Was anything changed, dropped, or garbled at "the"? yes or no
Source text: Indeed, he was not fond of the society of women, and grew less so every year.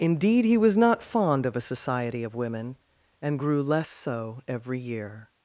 yes